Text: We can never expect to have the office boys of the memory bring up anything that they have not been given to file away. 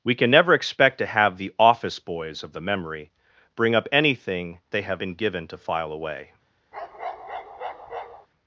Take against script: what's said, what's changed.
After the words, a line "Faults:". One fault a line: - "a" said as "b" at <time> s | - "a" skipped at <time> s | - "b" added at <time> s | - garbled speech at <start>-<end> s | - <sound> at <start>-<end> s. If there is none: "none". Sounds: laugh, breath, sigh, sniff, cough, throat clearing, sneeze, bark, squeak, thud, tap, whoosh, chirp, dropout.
We can never expect to have the office boys of the memory bring up anything they have been given to file away.
Faults:
- "that" skipped at 4.6 s
- "not" skipped at 5.0 s
- bark at 6.7-8.3 s